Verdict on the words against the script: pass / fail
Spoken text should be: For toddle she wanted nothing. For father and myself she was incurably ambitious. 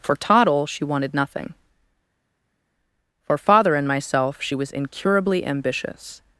pass